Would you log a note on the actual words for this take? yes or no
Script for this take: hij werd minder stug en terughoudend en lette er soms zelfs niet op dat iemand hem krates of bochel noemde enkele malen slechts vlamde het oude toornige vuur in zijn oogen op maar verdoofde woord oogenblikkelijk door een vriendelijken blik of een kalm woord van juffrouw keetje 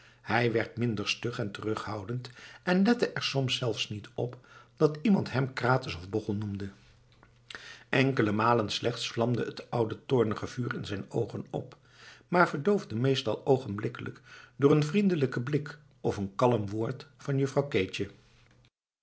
yes